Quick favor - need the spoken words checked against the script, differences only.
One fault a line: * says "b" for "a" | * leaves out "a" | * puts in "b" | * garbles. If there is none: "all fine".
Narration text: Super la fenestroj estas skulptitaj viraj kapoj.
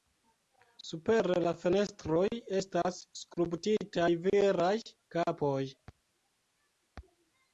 all fine